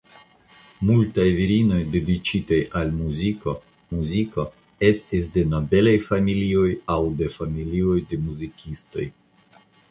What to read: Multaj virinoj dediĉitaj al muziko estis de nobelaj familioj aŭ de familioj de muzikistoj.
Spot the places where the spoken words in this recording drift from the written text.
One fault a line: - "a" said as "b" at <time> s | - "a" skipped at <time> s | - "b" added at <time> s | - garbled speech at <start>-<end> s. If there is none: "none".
- "muziko" added at 3.9 s